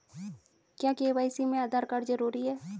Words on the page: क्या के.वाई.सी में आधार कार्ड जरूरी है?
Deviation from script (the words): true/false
false